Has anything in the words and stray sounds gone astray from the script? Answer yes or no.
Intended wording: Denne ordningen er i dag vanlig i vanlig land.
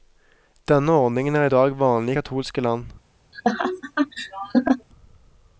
yes